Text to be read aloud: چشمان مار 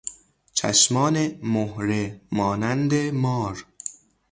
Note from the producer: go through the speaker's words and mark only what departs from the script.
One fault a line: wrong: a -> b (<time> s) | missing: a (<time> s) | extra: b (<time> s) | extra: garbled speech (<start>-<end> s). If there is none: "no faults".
extra: مهره مانند (1.4 s)